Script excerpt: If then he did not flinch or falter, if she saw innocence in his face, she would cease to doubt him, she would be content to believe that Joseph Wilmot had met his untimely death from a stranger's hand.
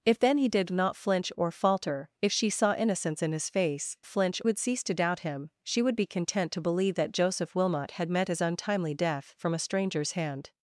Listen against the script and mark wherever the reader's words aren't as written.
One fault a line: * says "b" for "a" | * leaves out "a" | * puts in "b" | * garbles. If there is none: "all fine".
* says "flinch" for "she"